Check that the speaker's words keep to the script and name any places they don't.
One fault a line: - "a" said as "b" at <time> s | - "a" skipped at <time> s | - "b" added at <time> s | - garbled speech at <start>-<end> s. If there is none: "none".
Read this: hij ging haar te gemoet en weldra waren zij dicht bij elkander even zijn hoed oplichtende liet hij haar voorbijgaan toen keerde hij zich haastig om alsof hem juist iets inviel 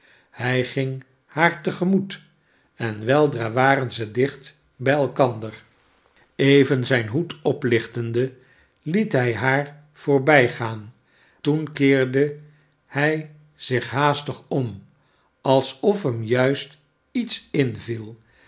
none